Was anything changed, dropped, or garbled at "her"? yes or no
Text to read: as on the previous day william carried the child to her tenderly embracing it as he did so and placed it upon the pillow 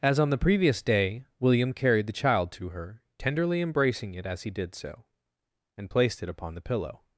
no